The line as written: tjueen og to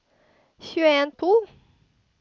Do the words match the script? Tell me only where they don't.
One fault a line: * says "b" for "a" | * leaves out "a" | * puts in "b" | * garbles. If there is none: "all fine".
all fine